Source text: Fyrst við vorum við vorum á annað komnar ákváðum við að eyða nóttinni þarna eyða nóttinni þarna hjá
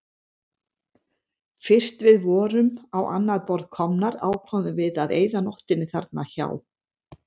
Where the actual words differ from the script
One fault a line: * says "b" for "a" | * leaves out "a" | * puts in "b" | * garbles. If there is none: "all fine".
* leaves out "við vorum"
* puts in "borð"
* leaves out "eyða nóttinni þarna"